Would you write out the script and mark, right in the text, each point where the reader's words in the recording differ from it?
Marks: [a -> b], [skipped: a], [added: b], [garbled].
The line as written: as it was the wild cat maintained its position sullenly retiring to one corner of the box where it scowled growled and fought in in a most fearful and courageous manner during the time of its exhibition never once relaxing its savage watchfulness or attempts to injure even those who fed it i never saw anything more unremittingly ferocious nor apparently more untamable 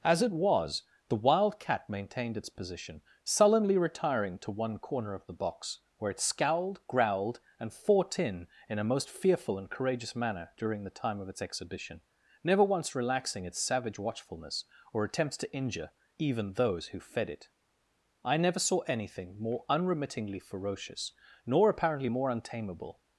as it was the wild cat maintained its position sullenly retiring to one corner of the box where it scowled growled and fought in in a most fearful and courageous manner during the time of its exhibition never once relaxing its savage watchfulness or attempts to injure even those who fed it i never saw anything more unremittingly ferocious nor apparently more untamable